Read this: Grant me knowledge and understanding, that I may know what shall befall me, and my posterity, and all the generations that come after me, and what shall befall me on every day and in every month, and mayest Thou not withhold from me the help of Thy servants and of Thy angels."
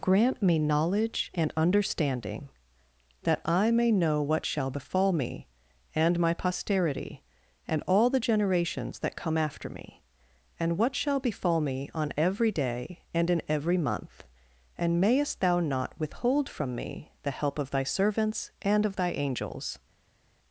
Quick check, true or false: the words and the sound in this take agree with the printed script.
true